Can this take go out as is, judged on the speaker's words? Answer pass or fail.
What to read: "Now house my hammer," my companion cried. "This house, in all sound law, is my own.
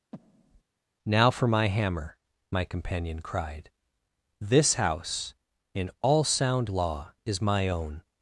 fail